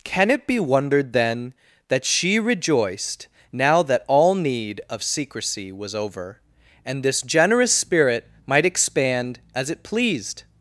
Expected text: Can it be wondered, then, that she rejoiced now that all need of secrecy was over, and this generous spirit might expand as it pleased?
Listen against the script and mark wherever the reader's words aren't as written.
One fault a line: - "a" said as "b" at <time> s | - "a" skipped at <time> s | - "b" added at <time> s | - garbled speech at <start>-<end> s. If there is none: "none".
none